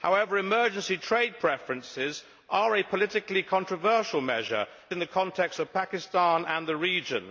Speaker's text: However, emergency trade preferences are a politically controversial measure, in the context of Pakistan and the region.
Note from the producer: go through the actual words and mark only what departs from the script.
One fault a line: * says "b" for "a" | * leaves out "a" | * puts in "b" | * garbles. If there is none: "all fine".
all fine